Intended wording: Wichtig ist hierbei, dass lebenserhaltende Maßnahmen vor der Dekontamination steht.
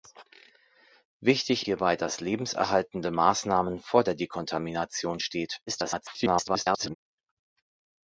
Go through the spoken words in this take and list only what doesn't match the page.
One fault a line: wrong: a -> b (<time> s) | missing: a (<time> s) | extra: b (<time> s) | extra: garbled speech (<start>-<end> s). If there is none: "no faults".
missing: ist (1.7 s)
extra: garbled speech (5.7-7.0 s)